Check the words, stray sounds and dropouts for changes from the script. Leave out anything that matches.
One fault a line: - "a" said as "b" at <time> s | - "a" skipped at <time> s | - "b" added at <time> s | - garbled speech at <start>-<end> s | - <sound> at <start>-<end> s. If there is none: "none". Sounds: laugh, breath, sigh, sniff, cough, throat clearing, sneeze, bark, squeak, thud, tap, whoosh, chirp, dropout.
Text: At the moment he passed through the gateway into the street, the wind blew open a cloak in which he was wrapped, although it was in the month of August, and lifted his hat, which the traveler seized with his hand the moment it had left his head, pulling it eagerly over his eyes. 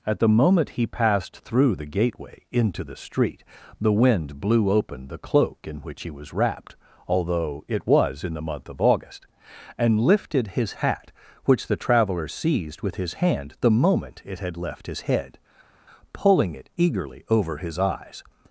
- "a" said as "the" at 5.1 s